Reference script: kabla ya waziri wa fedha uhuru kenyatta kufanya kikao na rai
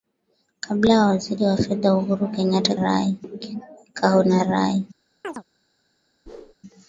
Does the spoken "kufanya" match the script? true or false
false